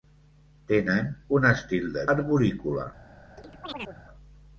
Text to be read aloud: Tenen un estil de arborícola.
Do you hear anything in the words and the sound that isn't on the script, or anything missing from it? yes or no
yes